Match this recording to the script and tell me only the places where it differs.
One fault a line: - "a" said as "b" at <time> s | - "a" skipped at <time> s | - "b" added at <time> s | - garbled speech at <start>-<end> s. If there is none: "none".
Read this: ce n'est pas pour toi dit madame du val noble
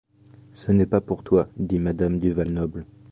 none